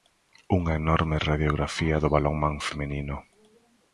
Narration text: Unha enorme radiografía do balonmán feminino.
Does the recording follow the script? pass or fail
pass